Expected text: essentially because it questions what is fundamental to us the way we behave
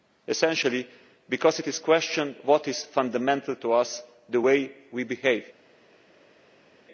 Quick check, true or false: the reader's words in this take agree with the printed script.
true